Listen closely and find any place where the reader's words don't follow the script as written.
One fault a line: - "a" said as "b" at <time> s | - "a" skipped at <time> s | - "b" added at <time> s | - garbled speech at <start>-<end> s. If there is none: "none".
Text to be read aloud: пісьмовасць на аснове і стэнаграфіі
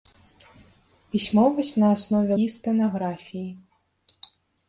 none